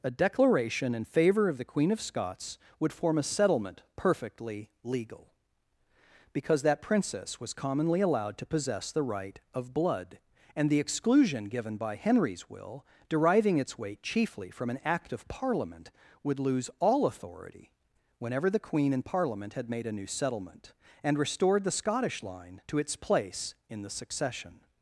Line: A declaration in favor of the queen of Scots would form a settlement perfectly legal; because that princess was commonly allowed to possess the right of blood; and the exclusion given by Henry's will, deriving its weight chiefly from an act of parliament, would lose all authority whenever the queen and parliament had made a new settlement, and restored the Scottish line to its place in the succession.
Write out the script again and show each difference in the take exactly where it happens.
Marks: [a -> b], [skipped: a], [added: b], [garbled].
A declaration in favor of the queen of Scots would form a settlement perfectly legal; because that princess was commonly allowed to possess the right of blood; and the exclusion given by Henry's will, deriving its weight chiefly from an act of parliament, would lose all authority whenever the queen and parliament had made a new settlement, and restored the Scottish line to its place in the succession.